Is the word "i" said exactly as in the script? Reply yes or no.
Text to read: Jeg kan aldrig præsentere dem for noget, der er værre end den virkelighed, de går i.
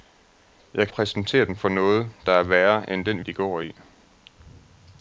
yes